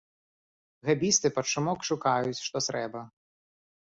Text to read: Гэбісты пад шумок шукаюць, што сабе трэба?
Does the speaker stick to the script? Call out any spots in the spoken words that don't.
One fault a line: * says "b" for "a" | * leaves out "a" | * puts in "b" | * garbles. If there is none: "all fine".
* leaves out "сабе"